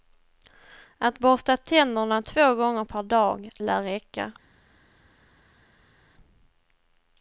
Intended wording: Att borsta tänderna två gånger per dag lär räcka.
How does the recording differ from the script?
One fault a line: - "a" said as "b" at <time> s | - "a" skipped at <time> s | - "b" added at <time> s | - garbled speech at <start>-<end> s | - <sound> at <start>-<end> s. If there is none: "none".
none